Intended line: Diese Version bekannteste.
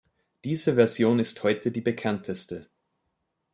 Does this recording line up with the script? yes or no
no